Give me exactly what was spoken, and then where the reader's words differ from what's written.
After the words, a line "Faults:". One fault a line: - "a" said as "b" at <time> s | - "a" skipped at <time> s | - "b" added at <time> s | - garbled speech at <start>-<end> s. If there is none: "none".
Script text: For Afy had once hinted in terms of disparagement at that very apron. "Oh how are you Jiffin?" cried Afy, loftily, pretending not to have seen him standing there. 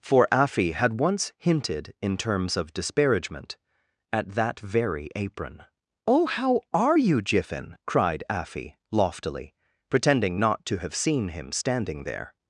For Afy had once hinted in terms of disparagement at that very apron. "Oh how are you Jiffin?" cried Afy, loftily, pretending not to have seen him standing there.
Faults:
none